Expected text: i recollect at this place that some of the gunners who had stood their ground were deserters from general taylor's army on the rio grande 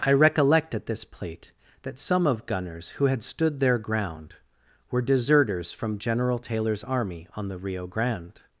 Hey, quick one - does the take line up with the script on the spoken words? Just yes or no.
no